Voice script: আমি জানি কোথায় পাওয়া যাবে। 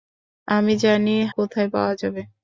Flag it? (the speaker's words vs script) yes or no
no